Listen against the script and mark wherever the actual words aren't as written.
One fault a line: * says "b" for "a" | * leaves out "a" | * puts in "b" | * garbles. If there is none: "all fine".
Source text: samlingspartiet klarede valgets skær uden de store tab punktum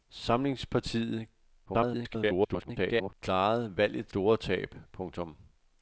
* garbles
* leaves out "skær uden de"